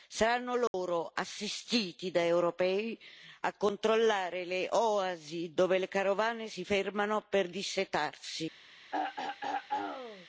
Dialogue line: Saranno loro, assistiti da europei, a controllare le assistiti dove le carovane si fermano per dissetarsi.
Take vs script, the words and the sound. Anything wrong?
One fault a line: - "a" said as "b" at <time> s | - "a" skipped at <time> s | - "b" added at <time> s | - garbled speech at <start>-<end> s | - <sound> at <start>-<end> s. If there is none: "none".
- dropout at 0.7-0.7 s
- "assistiti" said as "oasi" at 4.7 s
- throat clearing at 8.9-10.3 s